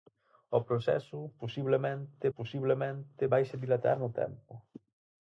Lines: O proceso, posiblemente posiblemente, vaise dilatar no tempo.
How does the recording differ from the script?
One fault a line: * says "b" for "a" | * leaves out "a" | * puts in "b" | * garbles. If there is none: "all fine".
all fine